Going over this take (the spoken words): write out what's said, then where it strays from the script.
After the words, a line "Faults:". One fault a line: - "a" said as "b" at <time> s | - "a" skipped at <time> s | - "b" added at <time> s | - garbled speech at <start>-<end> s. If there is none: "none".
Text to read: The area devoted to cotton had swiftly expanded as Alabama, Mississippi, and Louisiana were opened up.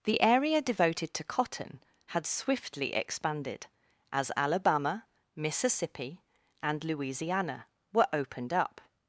The area devoted to cotton had swiftly expanded as Alabama, Mississippi, and Louisiana were opened up.
Faults:
none